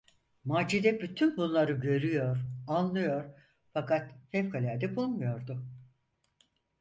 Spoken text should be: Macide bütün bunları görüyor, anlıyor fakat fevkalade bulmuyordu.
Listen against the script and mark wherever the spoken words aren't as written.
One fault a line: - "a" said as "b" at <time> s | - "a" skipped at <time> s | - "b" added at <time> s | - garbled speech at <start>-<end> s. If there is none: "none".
none